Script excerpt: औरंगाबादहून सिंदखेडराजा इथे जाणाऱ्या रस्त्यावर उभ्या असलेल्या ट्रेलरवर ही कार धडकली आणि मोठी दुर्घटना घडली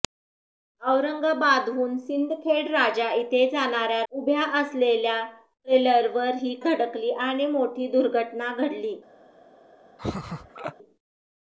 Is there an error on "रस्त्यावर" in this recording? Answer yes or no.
yes